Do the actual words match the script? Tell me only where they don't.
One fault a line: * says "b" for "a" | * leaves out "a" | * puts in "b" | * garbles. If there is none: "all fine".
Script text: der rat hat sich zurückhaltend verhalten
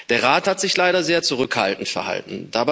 * puts in "leider sehr"